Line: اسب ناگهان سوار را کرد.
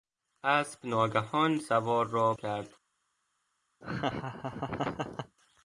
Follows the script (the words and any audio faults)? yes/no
no